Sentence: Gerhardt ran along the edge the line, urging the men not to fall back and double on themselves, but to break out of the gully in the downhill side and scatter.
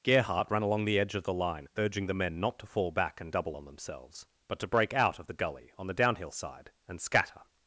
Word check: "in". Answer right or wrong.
wrong